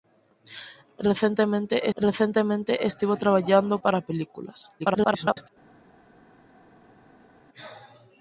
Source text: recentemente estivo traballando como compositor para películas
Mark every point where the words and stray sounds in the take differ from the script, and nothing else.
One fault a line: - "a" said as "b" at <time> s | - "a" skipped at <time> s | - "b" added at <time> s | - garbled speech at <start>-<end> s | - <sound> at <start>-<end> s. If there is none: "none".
- "recentemente" added at 1.9 s
- "como compositor" skipped at 3.8 s
- garbled speech at 4.8-5.5 s